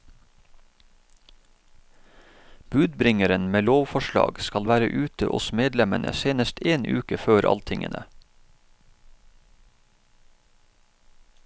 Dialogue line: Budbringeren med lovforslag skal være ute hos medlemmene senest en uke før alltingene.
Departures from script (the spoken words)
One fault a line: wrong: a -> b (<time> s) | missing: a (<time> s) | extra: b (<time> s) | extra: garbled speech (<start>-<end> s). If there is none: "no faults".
no faults